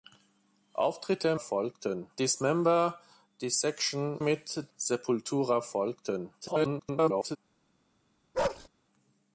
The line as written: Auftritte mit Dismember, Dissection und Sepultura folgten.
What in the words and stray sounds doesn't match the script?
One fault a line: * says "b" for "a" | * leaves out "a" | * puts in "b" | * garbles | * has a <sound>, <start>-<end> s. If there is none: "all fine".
* says "folgten" for "mit"
* says "mit" for "und"
* garbles
* has a bark, 8.3-8.7 s